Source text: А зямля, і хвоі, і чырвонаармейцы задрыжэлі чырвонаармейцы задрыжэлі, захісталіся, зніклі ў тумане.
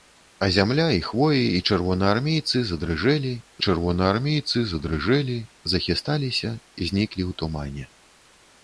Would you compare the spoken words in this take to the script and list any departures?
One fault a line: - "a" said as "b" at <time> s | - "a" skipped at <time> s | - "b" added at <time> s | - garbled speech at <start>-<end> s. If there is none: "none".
none